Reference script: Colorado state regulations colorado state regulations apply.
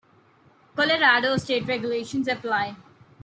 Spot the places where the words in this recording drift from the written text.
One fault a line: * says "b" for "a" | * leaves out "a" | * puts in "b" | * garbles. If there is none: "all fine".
* leaves out "colorado state regulations"